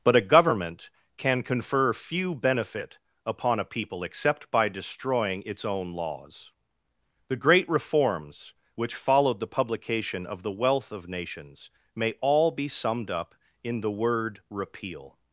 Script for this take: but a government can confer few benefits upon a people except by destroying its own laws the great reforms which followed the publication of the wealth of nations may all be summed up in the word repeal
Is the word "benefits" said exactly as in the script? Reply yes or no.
no